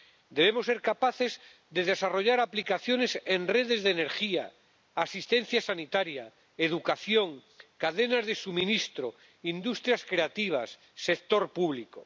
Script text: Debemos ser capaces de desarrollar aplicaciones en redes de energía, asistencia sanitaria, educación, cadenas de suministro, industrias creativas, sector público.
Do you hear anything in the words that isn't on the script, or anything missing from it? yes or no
no